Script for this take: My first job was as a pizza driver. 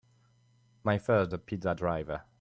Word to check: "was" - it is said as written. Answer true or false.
false